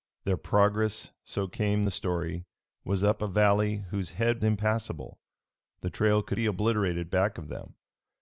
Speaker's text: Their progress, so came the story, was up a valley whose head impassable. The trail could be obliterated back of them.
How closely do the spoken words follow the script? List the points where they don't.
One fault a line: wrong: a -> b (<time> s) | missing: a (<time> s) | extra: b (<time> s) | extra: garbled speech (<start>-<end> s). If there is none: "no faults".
no faults